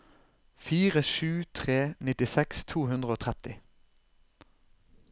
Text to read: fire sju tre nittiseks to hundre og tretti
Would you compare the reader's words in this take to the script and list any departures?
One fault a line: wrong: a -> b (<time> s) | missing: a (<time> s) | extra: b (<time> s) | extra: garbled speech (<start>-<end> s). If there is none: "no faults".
no faults